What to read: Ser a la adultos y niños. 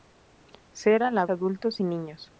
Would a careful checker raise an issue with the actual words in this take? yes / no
no